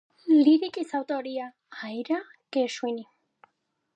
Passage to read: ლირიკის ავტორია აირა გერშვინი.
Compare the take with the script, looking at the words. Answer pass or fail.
pass